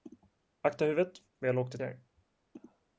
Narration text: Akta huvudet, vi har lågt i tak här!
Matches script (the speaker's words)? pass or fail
fail